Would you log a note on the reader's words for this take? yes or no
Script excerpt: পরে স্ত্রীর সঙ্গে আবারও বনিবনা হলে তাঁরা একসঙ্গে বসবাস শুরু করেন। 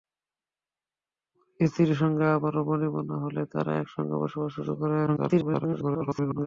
yes